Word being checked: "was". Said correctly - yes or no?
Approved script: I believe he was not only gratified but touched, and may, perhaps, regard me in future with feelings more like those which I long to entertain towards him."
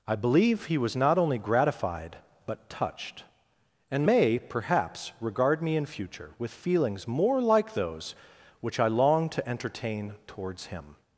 yes